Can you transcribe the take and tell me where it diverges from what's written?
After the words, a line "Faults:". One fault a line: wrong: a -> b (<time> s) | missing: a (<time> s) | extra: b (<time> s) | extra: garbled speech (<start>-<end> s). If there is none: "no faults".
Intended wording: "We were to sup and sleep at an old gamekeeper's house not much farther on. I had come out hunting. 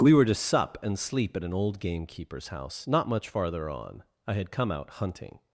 "We were to sup and sleep at an old gamekeeper's house not much farther on. I had come out hunting.
Faults:
no faults